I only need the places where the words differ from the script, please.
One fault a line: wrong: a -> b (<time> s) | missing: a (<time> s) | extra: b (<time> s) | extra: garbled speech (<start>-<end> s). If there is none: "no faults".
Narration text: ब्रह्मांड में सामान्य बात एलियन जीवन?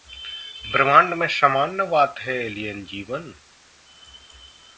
extra: है (2.2 s)